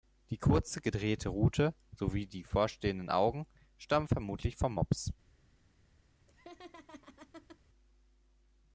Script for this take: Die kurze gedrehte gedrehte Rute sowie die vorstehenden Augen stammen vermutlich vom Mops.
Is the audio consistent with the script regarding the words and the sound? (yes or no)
no